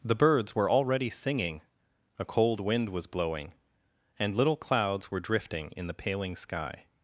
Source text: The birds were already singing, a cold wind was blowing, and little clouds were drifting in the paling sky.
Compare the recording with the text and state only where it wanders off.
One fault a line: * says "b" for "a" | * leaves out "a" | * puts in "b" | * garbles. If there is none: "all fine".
all fine